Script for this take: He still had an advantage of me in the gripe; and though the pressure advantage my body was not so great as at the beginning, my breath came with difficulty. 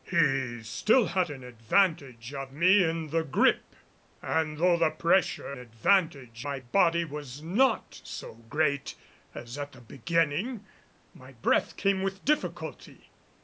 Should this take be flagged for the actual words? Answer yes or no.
no